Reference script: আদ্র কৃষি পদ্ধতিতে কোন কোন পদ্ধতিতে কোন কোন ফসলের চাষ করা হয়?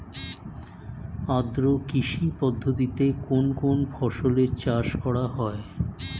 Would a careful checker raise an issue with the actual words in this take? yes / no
yes